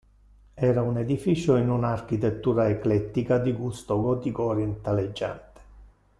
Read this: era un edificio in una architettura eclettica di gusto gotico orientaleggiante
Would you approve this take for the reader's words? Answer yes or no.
yes